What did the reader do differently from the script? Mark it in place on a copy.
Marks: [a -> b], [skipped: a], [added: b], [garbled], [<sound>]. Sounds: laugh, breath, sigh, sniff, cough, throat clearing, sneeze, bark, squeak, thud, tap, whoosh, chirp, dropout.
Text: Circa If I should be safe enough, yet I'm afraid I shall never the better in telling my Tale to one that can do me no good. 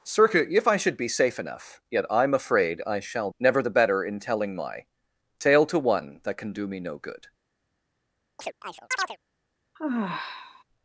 Circa If I should be safe enough, yet I'm afraid I shall never the better in telling my Tale to one that can do me no good. [chirp] [sigh]